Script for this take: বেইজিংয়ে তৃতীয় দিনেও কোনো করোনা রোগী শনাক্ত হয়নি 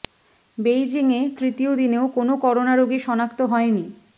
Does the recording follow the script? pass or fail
pass